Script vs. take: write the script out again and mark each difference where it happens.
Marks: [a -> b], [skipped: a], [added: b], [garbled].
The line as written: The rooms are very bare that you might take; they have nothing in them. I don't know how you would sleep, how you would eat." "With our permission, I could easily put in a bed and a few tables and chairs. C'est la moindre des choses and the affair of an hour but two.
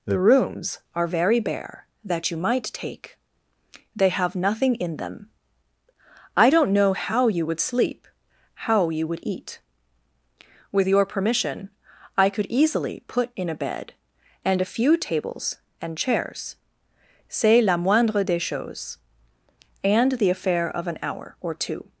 The rooms are very bare that you might take; they have nothing in them. I don't know how you would sleep, how you would eat." "With [our -> your] permission, I could easily put in a bed and a few tables and chairs. C'est la moindre des choses and the affair of an hour [but -> or] two.